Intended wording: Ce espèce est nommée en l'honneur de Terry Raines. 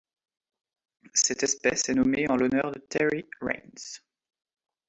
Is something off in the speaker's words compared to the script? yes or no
yes